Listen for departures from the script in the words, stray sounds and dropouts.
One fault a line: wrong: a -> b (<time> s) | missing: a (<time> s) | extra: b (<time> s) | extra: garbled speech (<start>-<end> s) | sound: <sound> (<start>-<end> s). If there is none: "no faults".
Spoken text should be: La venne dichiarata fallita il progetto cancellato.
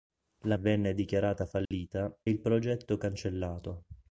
sound: dropout (1.7-1.7 s)